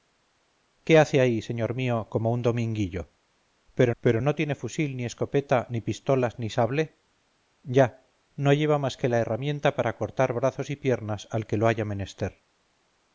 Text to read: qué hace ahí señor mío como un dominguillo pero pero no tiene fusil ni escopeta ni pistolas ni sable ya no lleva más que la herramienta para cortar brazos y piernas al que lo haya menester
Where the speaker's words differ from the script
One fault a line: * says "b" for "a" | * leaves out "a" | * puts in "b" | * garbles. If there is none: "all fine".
all fine